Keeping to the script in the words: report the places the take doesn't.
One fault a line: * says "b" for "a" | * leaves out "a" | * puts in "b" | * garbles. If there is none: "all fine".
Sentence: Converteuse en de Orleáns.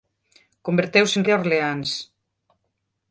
all fine